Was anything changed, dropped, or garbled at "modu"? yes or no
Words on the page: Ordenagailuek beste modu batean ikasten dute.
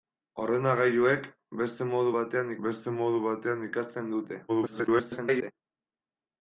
no